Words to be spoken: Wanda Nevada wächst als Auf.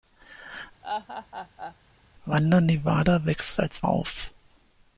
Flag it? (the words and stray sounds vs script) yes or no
yes